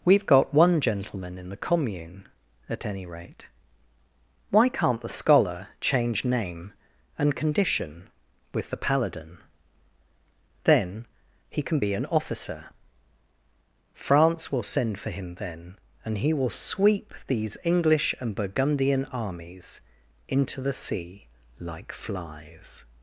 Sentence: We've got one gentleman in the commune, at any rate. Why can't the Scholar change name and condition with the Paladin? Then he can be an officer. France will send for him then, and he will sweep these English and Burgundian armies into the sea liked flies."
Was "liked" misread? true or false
true